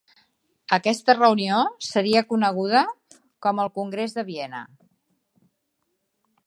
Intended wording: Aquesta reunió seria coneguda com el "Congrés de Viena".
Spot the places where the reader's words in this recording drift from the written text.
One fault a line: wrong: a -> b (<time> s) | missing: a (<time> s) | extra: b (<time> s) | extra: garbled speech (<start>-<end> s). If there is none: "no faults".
no faults